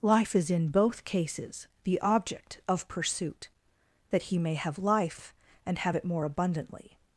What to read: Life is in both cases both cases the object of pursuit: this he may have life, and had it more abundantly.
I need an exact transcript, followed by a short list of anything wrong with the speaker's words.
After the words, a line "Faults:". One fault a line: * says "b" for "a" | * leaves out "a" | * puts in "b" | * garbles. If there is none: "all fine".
Life is in both cases the object of pursuit: that he may have life, and have it more abundantly.
Faults:
* leaves out "both cases"
* says "that" for "this"
* says "have" for "had"